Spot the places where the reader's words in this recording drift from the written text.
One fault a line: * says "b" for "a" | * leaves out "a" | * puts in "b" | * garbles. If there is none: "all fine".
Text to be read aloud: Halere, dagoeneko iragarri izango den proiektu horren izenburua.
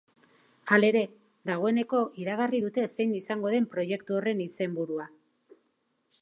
* puts in "dute zein"